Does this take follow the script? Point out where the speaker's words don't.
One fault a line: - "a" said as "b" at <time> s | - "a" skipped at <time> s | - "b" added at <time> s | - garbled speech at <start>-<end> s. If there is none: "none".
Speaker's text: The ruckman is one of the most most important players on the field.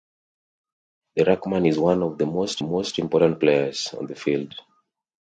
none